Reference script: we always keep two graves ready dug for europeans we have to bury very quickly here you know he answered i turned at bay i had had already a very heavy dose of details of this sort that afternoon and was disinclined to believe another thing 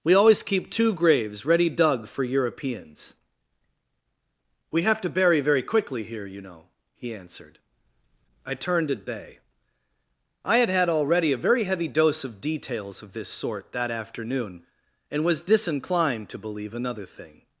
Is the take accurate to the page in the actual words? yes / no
yes